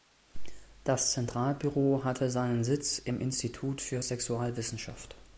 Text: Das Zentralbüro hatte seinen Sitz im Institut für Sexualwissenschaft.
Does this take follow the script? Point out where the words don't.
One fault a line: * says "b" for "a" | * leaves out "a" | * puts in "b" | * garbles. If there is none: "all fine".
all fine